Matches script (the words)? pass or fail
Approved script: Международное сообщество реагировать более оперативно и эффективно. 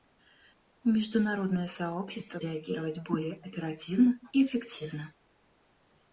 pass